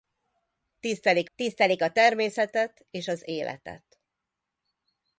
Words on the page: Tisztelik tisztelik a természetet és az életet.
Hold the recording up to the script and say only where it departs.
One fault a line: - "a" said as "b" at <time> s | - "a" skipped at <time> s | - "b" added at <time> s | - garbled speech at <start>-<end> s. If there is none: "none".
none